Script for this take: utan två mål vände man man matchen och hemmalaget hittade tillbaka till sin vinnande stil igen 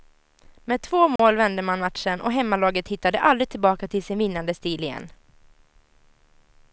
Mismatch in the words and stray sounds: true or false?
true